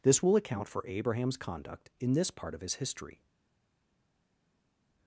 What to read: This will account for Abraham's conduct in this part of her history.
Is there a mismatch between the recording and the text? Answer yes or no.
yes